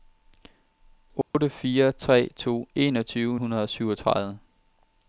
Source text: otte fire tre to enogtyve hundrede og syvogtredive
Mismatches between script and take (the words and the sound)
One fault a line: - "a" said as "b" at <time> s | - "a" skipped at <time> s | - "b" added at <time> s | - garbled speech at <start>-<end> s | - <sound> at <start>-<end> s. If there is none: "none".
- dropout at 1.2-1.3 s